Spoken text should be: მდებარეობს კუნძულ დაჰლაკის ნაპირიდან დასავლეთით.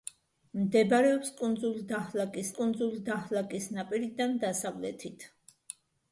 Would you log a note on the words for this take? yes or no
yes